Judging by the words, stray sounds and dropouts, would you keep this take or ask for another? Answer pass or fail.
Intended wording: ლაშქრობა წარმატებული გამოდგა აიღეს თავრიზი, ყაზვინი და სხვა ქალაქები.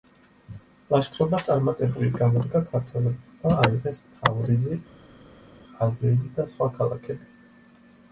fail